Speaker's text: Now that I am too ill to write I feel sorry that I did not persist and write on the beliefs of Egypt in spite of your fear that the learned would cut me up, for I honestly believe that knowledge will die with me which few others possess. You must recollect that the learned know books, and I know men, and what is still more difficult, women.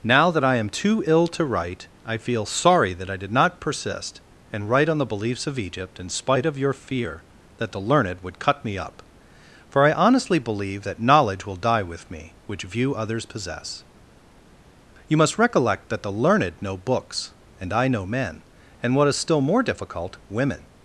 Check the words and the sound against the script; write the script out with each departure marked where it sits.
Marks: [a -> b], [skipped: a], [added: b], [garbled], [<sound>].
Now that I am too ill to write I feel sorry that I did not persist and write on the beliefs of Egypt in spite of your fear that the learned would cut me up, for I honestly believe that knowledge will die with me which [few -> view] others possess. You must recollect that the learned know books, and I know men, and what is still more difficult, women.